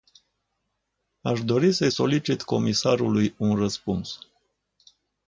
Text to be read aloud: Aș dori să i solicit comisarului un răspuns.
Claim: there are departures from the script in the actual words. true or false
false